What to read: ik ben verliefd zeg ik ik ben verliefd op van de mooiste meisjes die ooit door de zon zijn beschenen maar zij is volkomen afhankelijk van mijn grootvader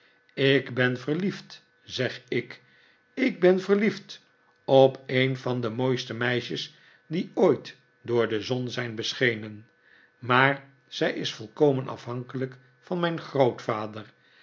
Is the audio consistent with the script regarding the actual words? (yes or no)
no